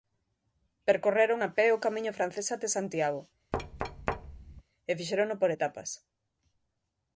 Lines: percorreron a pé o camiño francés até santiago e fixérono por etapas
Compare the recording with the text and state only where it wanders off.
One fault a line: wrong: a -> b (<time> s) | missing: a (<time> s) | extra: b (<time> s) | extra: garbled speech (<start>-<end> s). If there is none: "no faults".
no faults